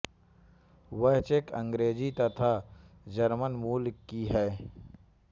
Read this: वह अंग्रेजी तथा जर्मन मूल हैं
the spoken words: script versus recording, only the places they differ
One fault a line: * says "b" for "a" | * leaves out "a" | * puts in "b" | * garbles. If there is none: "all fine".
* puts in "चेक"
* puts in "की"